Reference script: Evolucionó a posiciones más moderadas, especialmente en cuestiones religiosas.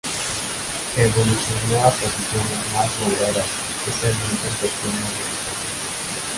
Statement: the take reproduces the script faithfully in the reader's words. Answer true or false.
true